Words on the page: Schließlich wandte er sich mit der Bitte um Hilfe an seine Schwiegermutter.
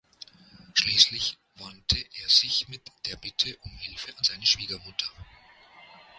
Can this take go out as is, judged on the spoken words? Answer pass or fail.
pass